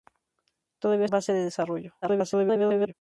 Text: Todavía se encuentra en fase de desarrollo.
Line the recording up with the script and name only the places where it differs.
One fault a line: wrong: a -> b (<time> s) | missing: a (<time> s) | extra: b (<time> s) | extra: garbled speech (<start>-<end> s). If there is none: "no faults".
missing: se encuentra (1.1 s)
extra: garbled speech (2.0-2.9 s)